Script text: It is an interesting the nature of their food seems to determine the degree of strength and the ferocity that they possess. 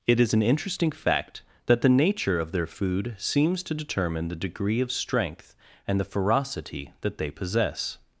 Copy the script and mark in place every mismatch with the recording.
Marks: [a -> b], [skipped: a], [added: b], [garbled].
It is an interesting [added: fact that] the nature of their food seems to determine the degree of strength and the ferocity that they possess.